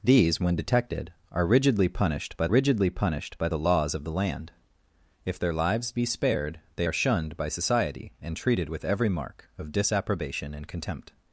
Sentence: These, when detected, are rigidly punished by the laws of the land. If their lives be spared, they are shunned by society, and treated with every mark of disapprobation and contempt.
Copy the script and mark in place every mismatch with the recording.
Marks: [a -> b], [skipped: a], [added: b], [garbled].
These, when detected, are rigidly punished by [added: rigidly punished by] the laws of the land. If their lives be spared, they are shunned by society, and treated with every mark of disapprobation and contempt.